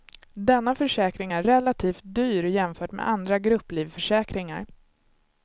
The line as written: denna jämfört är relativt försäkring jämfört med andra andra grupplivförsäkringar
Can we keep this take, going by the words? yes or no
no